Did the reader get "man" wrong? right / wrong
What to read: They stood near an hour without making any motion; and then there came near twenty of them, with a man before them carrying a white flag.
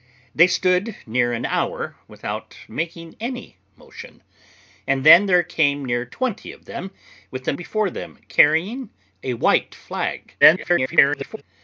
wrong